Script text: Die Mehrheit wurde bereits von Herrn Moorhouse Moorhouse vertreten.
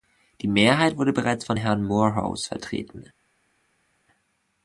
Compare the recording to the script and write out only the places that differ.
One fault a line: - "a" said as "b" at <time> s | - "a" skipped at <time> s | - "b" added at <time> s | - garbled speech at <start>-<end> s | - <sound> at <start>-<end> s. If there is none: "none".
- "Moorhouse" skipped at 2.5 s